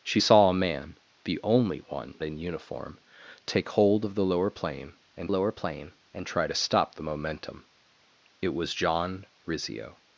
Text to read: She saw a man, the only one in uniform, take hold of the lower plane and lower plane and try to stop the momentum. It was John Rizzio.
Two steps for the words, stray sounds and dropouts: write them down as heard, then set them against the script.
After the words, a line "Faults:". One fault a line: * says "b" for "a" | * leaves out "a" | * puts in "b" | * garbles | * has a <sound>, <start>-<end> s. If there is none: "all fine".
She saw a man, the only one in uniform, take hold of the lower plane and lower plane and try to stop the momentum. It was John Rizzio.
Faults:
all fine